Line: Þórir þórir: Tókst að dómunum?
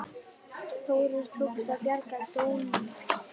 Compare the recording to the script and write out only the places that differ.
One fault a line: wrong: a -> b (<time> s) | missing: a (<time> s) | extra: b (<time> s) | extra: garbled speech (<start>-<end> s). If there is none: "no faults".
missing: þórir (1.3 s)
extra: bjarga (1.9 s)